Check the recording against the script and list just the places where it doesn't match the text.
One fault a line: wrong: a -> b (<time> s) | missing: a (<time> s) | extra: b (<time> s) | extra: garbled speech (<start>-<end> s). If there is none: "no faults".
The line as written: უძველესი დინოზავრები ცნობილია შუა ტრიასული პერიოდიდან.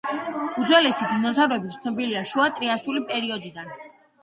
no faults